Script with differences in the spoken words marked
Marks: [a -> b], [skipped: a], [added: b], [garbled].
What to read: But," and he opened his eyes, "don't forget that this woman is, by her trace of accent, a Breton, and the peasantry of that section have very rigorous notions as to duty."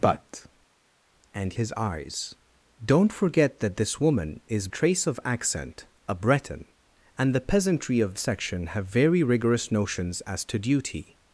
But," and [skipped: he opened] his eyes, "don't forget that this woman is, [skipped: by her] trace of accent, a Breton, and the peasantry of [skipped: that] section have very rigorous notions as to duty."